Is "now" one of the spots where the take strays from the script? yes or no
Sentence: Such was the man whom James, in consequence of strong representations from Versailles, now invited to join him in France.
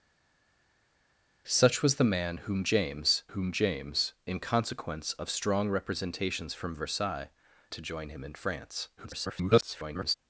yes